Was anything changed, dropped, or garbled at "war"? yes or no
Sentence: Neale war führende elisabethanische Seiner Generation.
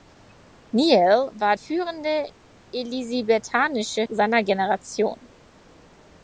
no